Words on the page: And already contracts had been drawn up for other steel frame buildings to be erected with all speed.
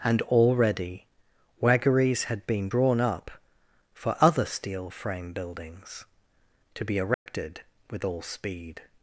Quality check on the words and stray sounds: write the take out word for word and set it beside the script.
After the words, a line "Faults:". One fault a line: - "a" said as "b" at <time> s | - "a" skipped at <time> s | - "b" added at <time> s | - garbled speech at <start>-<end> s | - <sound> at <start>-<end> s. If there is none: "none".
And already waggeries had been drawn up for other steel frame buildings to be erected with all speed.
Faults:
- "contracts" said as "waggeries" at 1.6 s
- dropout at 7.1-7.3 s